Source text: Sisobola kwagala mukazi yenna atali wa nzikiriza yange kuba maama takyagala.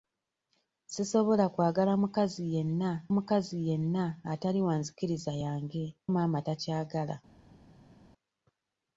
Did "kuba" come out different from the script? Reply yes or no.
yes